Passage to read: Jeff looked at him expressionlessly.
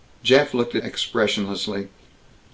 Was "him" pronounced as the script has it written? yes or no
no